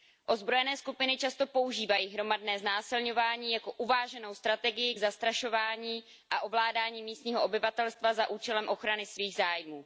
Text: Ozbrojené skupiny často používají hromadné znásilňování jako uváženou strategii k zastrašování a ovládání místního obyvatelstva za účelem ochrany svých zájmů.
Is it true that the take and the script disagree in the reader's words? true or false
false